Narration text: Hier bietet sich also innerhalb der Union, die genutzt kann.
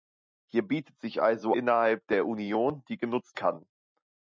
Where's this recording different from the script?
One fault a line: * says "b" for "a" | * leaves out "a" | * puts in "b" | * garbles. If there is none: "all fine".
all fine